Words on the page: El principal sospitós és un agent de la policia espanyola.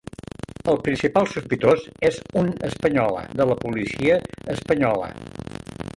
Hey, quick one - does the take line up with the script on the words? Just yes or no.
no